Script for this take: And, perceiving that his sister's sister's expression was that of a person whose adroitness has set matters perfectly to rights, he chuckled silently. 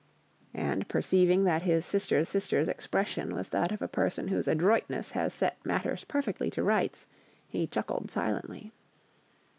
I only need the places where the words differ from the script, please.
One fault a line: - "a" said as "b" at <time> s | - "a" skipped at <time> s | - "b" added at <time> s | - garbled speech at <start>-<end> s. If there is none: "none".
none